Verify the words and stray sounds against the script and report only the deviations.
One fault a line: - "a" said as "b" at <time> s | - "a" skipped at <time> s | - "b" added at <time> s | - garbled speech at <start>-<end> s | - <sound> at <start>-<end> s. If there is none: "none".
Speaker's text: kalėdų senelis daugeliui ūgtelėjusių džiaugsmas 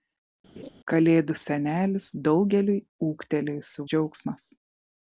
- laugh at 0.6-0.7 s